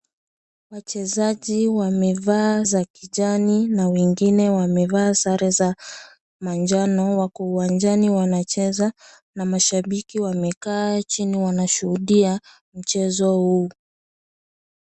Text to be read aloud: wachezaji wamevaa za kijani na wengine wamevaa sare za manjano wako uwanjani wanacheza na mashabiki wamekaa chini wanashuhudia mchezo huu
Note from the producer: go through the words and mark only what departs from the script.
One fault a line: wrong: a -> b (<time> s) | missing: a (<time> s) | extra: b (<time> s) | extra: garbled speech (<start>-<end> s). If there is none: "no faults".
no faults